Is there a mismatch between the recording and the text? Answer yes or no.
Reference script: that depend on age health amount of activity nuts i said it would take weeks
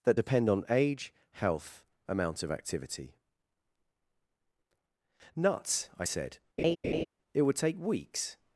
no